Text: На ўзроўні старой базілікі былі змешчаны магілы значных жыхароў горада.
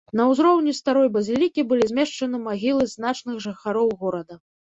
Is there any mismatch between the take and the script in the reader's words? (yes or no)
no